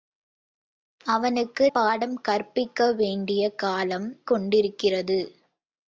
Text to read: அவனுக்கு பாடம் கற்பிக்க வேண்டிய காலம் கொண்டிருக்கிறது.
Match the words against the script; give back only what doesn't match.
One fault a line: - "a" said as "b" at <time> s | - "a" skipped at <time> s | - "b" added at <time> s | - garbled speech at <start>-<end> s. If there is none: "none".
none